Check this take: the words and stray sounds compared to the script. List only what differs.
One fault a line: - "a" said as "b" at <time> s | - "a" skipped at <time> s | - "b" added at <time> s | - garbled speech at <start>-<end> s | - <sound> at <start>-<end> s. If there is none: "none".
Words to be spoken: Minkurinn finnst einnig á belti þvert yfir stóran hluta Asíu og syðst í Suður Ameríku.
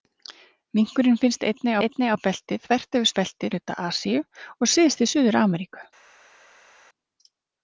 - "einnig" added at 1.8 s
- "stóran" said as "belti" at 3.2 s